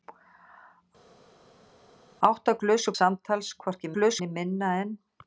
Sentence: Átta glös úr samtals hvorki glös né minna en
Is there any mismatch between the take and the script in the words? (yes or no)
no